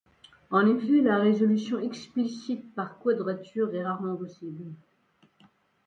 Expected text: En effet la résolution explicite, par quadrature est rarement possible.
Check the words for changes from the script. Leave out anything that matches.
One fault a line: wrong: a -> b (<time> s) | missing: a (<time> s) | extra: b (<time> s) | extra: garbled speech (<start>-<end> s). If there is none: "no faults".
no faults